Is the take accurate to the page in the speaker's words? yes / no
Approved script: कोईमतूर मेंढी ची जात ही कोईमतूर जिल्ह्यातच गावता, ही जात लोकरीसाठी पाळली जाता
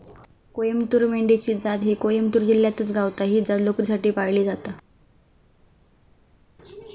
yes